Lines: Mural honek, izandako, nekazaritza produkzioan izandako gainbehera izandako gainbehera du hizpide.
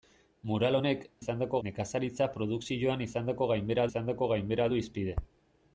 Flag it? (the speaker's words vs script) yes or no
no